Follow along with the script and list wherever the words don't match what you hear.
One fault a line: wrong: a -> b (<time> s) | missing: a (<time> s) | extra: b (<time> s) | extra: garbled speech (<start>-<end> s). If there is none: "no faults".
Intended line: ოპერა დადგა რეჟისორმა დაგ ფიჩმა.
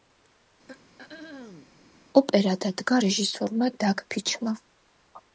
no faults